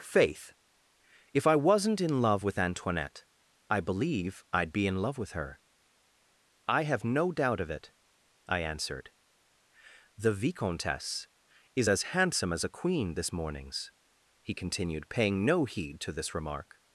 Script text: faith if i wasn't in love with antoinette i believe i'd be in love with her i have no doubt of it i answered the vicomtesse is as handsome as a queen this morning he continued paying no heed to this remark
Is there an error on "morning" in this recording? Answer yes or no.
yes